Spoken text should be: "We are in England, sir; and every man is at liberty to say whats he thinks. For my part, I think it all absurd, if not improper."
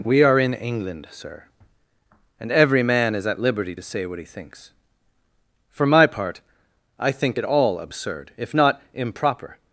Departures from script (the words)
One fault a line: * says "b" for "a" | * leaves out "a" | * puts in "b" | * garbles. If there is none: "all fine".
* says "what" for "whats"